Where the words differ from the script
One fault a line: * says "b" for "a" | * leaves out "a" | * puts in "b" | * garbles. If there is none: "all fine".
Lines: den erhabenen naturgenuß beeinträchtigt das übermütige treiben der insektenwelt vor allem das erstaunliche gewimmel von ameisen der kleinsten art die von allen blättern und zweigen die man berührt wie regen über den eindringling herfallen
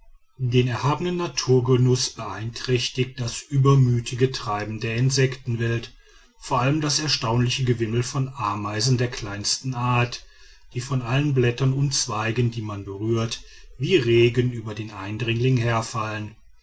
all fine